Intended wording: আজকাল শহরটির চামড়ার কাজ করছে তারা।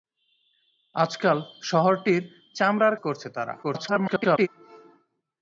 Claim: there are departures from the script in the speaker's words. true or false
true